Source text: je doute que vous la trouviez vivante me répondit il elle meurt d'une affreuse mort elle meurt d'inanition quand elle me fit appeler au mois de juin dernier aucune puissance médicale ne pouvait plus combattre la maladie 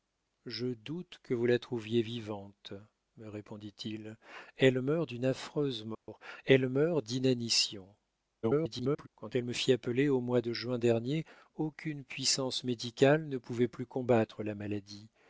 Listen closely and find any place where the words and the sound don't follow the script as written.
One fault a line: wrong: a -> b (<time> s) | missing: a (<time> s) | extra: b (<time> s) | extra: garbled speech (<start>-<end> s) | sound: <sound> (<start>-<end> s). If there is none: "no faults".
sound: dropout (5.9-6.1 s)
extra: garbled speech (8.4-9.1 s)